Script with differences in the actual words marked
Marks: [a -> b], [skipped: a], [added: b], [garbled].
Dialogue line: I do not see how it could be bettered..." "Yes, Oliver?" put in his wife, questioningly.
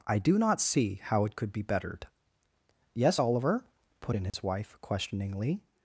I do not see how it could be bettered..." "Yes, Oliver?" put in his wife, questioningly.